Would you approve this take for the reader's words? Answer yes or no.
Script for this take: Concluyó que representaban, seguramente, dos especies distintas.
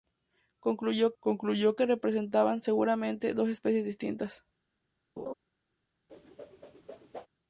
no